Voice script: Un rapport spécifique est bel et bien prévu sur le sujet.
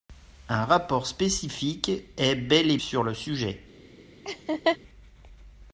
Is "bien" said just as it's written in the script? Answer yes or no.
no